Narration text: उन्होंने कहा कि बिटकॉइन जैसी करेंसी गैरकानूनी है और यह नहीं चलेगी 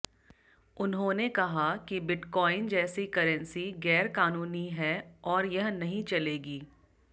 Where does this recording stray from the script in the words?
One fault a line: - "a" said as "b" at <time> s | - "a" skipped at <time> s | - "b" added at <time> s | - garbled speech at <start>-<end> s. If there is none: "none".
none